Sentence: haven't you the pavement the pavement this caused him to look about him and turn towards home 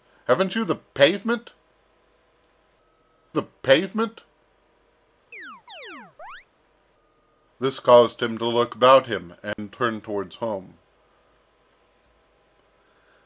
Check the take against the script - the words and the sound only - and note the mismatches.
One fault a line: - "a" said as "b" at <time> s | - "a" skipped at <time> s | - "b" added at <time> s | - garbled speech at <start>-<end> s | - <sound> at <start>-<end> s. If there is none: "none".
- chirp at 5.3-6.5 s
- dropout at 9.5-9.6 s